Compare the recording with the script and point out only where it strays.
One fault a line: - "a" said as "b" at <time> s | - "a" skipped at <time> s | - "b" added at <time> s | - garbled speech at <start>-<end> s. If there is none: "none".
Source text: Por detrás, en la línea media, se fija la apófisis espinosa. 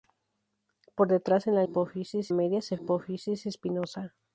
- "línea" said as "apófisis" at 1.6 s
- "fija la" skipped at 2.8 s